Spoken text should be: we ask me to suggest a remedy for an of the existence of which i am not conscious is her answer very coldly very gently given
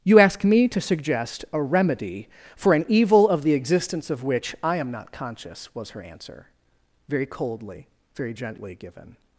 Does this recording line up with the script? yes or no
no